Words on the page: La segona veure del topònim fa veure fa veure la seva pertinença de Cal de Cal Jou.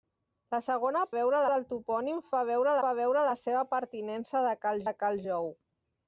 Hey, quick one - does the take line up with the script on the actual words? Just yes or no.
yes